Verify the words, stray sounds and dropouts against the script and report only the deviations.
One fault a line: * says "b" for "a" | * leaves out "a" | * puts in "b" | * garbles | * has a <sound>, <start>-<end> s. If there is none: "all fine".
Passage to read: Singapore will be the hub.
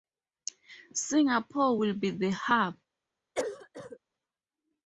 * has a cough, 3.4-4.0 s